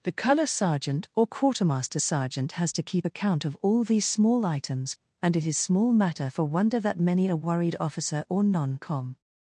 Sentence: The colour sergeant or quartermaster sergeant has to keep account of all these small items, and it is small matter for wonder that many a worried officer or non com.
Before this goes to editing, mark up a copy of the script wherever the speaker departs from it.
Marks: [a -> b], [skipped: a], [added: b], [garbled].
The colour sergeant or quartermaster sergeant has to keep account of all these small items, and it is small matter for wonder that many a worried officer or non com.